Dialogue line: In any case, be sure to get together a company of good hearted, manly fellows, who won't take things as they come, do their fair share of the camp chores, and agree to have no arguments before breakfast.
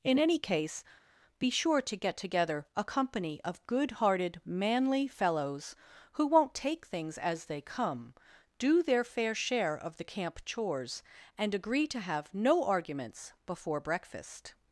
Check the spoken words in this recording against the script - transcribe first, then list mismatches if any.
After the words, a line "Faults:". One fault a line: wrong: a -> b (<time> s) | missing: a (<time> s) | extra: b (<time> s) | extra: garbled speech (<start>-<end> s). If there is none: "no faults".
In any case, be sure to get together a company of good hearted, manly fellows, who won't take things as they come, do their fair share of the camp chores, and agree to have no arguments before breakfast.
Faults:
no faults